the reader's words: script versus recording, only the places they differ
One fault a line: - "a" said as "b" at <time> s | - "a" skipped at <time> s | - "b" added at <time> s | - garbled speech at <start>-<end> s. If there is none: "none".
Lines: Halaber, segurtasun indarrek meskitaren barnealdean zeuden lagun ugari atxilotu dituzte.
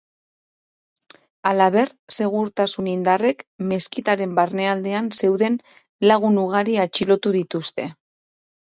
none